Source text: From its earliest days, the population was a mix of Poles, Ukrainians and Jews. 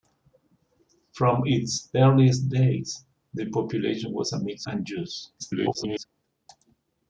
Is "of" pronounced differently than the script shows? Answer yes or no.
yes